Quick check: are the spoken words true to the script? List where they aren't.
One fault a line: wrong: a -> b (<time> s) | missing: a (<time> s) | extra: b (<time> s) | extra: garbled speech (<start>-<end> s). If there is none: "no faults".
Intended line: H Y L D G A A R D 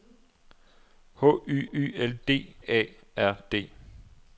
extra: Y (1.7 s)
missing: G A (2.6 s)